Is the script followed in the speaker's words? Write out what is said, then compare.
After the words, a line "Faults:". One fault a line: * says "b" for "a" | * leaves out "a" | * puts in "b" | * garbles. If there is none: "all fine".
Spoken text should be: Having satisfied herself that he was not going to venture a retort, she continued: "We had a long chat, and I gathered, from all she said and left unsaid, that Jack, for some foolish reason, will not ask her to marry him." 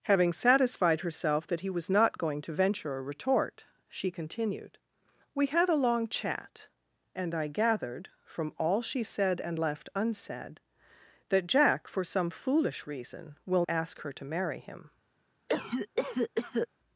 Having satisfied herself that he was not going to venture a retort, she continued: "We had a long chat, and I gathered, from all she said and left unsaid, that Jack, for some foolish reason, will ask her to marry him."
Faults:
* leaves out "not"